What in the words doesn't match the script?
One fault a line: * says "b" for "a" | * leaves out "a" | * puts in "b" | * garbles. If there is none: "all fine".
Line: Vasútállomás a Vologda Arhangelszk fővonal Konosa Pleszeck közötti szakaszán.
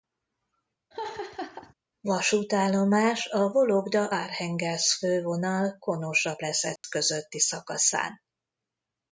all fine